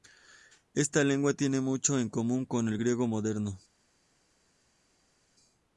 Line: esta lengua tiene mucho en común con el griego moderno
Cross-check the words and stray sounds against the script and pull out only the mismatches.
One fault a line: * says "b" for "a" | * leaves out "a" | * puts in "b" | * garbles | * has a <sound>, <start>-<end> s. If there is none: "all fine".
all fine